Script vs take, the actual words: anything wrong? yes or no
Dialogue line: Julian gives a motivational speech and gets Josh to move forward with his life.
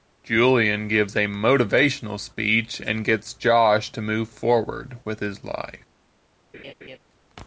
no